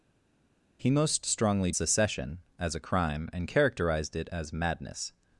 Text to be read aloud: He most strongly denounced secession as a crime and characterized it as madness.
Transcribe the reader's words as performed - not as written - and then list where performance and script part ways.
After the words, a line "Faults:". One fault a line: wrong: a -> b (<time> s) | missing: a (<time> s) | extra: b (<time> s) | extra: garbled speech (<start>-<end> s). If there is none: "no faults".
He most strongly secession as a crime and characterized it as madness.
Faults:
missing: denounced (1.7 s)